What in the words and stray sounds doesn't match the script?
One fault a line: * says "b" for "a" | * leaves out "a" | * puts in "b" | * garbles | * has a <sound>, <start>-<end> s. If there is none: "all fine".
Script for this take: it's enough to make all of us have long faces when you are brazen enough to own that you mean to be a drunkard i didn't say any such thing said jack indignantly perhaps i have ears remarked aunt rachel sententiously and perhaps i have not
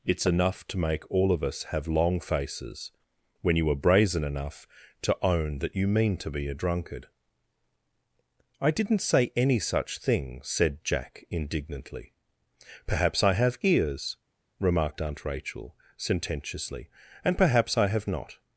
all fine